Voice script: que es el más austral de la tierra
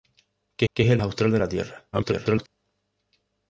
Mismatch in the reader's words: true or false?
true